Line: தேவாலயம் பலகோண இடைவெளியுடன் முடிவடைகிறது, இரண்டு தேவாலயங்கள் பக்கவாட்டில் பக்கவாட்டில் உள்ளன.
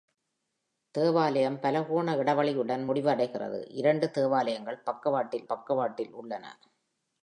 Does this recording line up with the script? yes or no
yes